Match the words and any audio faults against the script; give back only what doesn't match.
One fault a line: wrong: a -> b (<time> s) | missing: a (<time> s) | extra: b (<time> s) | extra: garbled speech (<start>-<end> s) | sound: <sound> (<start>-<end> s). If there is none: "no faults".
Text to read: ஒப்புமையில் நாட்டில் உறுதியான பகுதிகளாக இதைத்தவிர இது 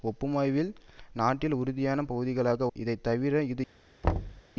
sound: thud (4.0-4.4 s)